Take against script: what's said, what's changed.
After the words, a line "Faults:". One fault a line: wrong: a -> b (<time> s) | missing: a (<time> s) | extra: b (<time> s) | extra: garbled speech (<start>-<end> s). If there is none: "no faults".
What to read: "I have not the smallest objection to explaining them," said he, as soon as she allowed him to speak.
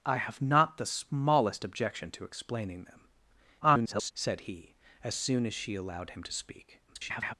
"I have not the smallest objection to explaining them," [garbled] said he, as soon as she allowed him to speak. [garbled]
Faults:
extra: garbled speech (3.6-4.1 s)
extra: garbled speech (6.9-7.3 s)